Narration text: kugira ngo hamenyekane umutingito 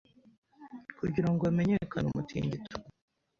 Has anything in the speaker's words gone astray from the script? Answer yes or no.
no